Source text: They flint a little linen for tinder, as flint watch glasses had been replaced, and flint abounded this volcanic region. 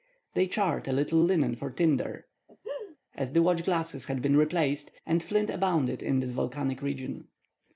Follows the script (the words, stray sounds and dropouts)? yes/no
no